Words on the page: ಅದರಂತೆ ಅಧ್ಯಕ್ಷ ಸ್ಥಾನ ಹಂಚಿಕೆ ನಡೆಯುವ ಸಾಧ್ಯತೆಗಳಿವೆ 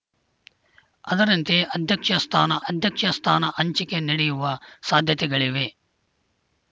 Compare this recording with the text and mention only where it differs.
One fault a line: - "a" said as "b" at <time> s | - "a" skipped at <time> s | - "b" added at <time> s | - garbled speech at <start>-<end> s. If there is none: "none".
- "ಅಧ್ಯಕ್ಷ ಸ್ಥಾನ" added at 2.7 s